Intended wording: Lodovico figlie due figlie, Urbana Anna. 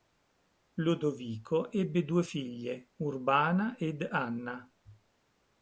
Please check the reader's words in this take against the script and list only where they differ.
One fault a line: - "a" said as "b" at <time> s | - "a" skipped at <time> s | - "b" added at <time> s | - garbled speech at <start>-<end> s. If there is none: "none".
- "figlie" said as "ebbe" at 1.7 s
- "ed" added at 3.8 s